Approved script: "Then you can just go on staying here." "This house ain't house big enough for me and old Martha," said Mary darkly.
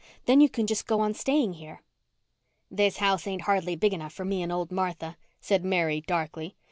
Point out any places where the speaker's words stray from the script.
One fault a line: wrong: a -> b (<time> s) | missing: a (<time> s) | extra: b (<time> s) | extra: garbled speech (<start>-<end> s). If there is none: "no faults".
wrong: house -> hardly (3.4 s)